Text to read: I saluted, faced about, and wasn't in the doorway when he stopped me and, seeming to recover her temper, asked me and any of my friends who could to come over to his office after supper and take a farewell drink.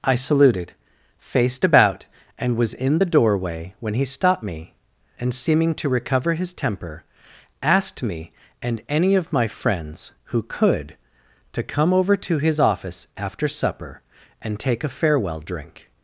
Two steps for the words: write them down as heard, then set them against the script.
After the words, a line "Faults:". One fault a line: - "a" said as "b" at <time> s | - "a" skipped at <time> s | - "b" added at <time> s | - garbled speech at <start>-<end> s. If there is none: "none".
I saluted, faced about, and was in the doorway when he stopped me and, seeming to recover his temper, asked me and any of my friends who could to come over to his office after supper and take a farewell drink.
Faults:
- "wasn't" said as "was" at 2.5 s
- "her" said as "his" at 6.3 s